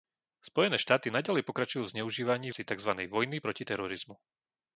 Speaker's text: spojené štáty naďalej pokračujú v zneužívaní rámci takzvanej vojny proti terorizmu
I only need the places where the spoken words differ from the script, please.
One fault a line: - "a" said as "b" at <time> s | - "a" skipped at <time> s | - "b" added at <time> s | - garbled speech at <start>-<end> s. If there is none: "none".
none